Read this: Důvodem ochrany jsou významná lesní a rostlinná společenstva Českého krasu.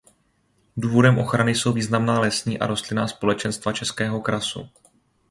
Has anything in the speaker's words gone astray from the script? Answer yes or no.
no